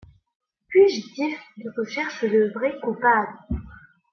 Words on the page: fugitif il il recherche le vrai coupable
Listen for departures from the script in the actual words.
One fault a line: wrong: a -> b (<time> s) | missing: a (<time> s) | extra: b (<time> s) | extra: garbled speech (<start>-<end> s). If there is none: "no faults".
missing: il (1.7 s)